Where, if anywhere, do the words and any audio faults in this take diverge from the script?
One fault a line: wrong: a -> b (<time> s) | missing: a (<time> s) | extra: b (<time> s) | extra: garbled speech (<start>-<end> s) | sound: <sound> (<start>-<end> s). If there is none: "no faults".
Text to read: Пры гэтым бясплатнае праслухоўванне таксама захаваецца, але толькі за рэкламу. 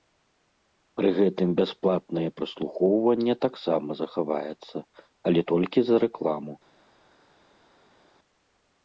no faults